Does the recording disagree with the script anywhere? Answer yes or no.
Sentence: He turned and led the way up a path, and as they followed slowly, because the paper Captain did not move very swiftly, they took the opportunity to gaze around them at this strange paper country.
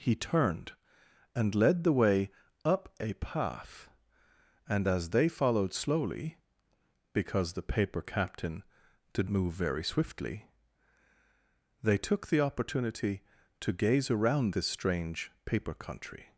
yes